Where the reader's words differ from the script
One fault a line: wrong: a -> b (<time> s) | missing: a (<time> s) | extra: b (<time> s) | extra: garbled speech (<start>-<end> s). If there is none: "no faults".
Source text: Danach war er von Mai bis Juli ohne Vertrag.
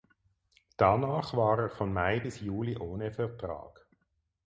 no faults